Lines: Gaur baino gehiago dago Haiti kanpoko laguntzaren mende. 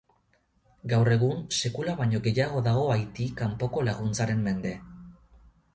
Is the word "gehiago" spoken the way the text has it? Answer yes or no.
yes